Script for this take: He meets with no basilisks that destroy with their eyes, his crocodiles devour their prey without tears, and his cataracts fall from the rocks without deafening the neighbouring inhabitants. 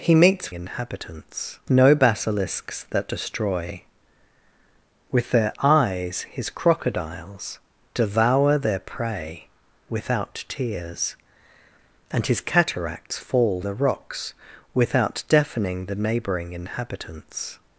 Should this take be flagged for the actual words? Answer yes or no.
yes